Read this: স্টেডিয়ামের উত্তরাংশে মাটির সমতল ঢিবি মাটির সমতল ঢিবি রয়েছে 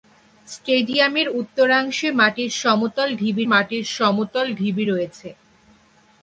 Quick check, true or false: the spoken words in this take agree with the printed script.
true